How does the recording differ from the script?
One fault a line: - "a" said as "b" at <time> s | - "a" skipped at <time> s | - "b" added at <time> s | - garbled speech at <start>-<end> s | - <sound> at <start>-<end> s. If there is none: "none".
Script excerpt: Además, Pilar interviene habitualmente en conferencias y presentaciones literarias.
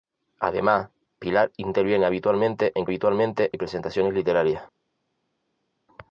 - "conferencias" said as "habitualmente" at 2.8 s